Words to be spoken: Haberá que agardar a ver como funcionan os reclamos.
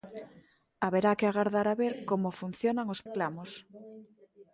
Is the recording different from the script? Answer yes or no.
no